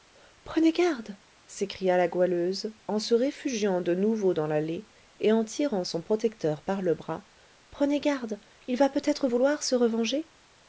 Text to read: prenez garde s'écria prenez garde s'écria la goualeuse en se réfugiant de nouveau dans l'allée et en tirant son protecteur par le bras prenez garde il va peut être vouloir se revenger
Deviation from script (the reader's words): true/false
true